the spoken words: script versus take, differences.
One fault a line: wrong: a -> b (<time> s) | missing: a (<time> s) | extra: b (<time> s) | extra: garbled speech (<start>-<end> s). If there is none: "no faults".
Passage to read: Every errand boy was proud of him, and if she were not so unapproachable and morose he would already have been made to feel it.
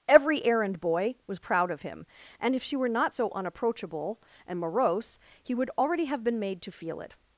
no faults